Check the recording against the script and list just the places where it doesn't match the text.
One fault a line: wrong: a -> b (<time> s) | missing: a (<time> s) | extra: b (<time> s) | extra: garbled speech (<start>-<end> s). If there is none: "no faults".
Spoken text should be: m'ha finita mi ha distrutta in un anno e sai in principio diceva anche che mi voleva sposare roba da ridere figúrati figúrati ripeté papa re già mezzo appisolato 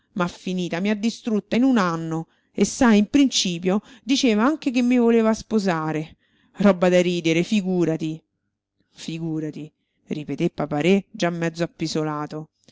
no faults